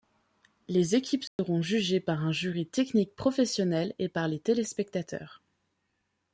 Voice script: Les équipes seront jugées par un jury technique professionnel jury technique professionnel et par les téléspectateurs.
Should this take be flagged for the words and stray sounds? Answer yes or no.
yes